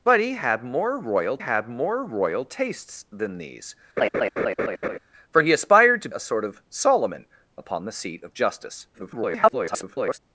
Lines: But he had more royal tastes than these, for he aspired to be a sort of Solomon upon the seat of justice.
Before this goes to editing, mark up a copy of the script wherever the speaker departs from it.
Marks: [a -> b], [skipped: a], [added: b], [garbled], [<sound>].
But he had more royal [added: had more royal] tastes than these, [laugh] for he aspired to [skipped: be] a sort of Solomon upon the seat of justice. [garbled]